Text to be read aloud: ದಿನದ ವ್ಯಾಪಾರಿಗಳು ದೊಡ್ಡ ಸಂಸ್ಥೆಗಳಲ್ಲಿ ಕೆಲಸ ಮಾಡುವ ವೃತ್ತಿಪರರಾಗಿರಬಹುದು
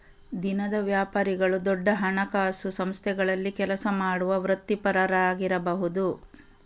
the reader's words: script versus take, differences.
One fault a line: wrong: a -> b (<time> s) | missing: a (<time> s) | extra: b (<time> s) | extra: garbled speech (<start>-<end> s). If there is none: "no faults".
extra: ಹಣಕಾಸು (1.9 s)